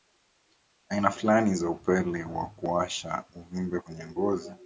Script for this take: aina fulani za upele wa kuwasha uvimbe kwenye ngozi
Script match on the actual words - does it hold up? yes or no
yes